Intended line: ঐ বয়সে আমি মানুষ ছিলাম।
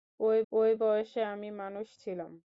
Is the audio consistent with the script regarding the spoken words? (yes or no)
no